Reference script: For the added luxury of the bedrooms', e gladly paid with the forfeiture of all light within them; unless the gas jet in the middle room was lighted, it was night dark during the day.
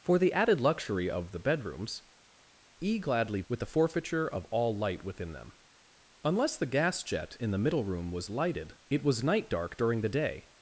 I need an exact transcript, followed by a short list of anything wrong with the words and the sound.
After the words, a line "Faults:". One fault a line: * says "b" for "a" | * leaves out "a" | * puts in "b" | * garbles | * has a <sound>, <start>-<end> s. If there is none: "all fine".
For the added luxury of the bedrooms', e gladly with the forfeiture of all light within them; unless the gas jet in the middle room was lighted, it was night dark during the day.
Faults:
* leaves out "paid"